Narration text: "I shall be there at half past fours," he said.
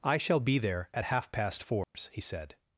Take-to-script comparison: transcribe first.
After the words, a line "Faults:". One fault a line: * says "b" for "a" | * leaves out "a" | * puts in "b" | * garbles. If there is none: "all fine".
"I shall be there at half past fours," he said.
Faults:
all fine